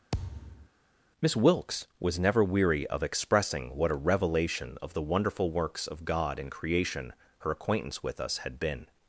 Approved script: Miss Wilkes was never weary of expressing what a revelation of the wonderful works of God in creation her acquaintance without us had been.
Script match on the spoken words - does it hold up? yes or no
no